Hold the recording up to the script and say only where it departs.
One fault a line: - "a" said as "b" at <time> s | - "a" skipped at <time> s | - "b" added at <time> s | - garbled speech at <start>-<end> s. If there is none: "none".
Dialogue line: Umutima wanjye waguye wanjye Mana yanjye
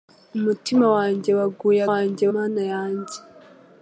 none